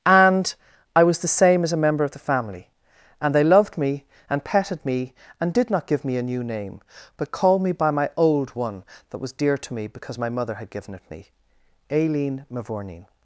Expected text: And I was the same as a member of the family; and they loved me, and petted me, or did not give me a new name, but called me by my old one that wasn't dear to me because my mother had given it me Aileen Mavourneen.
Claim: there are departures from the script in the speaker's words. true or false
true